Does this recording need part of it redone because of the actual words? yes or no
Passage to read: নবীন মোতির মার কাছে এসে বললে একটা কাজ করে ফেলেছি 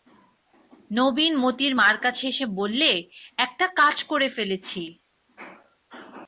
no